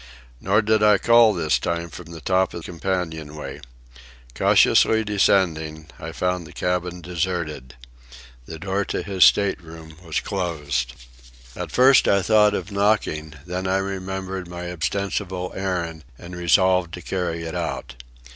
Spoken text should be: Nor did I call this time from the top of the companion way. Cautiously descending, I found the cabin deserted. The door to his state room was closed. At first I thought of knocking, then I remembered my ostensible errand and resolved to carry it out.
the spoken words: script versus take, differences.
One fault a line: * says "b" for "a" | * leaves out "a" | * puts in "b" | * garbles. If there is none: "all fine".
* leaves out "the"